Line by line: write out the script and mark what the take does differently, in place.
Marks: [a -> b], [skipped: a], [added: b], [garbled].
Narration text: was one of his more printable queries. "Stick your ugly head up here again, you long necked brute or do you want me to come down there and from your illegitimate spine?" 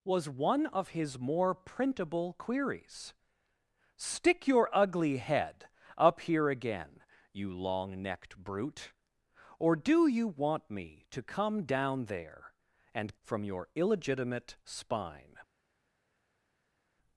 was one of his more printable queries. "Stick your ugly head up here again, you long necked brute or do you want me to come down there and from your illegitimate spine?"